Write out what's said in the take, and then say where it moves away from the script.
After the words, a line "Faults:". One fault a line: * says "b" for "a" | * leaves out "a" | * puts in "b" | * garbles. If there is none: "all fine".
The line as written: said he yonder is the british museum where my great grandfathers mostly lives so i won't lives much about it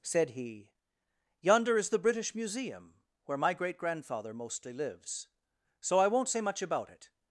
said he yonder is the british museum where my great grandfather mostly lives so i won't say much about it
Faults:
* says "grandfather" for "grandfathers"
* says "say" for "lives"